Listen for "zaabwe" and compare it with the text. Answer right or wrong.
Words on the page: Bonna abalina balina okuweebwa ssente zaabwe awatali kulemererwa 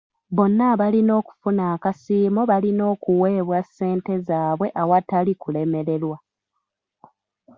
right